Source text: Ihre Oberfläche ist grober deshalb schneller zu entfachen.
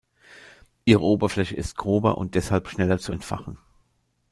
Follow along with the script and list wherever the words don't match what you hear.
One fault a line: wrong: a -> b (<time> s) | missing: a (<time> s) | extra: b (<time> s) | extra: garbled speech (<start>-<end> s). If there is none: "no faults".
extra: und (2.2 s)